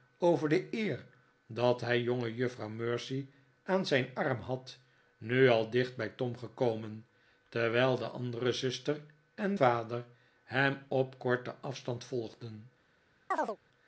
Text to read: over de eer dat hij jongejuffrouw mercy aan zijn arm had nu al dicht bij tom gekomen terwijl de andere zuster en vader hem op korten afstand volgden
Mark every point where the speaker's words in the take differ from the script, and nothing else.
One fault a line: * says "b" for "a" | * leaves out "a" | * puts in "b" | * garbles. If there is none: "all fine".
all fine